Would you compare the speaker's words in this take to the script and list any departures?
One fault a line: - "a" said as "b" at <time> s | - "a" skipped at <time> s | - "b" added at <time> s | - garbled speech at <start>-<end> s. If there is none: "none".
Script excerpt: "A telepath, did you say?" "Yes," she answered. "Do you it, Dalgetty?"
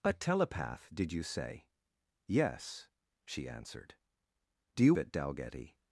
none